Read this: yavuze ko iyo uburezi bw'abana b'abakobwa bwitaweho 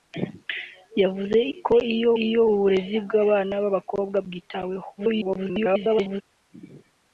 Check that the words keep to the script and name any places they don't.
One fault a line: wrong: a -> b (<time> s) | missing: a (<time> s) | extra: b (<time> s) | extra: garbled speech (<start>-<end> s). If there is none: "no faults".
extra: iyo (2.2 s)
extra: garbled speech (5.0-6.2 s)